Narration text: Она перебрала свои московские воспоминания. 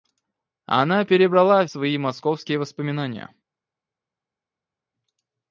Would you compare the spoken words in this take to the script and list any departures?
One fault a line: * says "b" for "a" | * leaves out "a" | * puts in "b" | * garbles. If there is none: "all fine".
all fine